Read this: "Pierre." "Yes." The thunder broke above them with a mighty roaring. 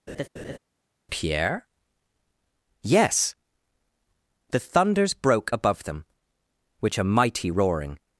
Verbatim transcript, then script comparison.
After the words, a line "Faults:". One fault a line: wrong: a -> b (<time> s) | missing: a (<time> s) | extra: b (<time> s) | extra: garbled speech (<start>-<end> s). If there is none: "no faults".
"Pierre." "Yes." The thunders broke above them which a mighty roaring.
Faults:
wrong: thunder -> thunders (4.6 s)
wrong: with -> which (6.8 s)